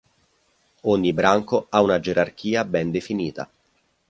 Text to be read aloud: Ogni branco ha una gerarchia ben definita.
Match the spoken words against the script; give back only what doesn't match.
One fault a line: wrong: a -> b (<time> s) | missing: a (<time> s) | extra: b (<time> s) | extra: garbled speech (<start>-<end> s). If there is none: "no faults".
no faults